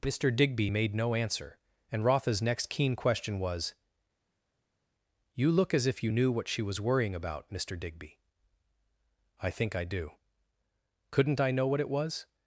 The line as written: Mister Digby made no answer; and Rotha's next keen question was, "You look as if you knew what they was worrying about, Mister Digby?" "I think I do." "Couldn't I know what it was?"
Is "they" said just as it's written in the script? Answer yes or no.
no